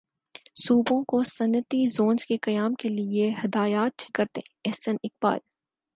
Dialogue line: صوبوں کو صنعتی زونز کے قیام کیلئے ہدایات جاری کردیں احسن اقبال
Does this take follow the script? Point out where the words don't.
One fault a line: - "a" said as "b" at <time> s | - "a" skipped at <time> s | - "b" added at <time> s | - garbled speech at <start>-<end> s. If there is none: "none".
- "جاری" skipped at 4.1 s